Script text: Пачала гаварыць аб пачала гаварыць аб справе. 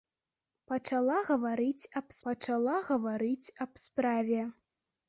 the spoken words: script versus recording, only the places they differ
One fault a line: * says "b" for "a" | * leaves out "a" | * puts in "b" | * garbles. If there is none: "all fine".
all fine